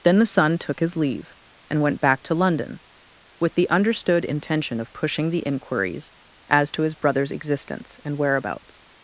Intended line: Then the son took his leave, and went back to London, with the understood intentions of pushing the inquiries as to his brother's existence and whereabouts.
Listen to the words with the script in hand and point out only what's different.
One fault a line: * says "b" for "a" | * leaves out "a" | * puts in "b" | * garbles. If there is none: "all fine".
* says "intention" for "intentions"